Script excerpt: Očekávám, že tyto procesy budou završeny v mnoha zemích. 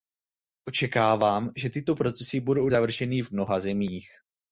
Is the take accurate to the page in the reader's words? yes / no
yes